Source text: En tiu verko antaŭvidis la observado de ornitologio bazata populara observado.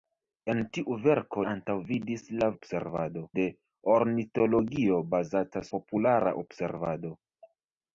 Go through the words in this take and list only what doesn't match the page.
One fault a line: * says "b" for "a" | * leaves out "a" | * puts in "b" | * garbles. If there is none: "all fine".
all fine